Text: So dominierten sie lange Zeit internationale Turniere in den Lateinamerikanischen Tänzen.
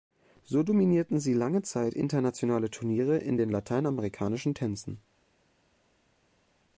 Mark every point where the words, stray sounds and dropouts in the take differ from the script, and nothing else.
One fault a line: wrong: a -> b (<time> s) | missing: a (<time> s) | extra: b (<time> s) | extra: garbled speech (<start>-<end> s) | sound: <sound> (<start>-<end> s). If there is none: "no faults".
no faults